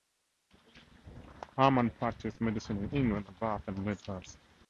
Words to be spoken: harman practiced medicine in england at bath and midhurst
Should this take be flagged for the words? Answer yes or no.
no